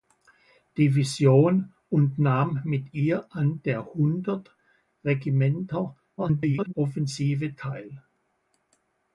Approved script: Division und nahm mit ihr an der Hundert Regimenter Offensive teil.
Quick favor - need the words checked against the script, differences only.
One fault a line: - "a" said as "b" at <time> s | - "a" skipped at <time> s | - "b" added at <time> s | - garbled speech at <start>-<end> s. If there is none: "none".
- garbled speech at 6.2-6.7 s